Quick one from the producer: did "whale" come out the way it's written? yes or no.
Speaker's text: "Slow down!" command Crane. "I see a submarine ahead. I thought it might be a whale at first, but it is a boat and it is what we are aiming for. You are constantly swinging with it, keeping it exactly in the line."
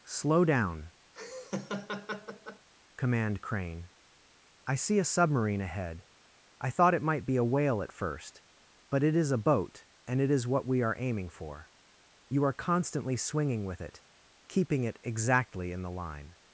yes